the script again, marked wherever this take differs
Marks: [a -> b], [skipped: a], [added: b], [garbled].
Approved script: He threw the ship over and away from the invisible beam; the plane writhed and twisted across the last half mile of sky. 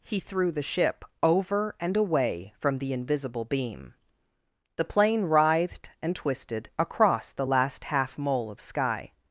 He threw the ship over and away from the invisible beam; the plane writhed and twisted across the last half [mile -> mole] of sky.